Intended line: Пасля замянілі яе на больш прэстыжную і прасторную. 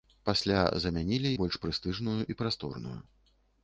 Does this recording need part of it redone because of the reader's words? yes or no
yes